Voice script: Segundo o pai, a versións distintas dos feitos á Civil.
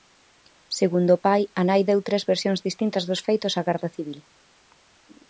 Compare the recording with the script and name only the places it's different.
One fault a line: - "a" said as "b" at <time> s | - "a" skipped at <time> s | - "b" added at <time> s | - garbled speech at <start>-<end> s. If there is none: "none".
- "nai deu tres" added at 1.7 s
- "Garda" added at 3.7 s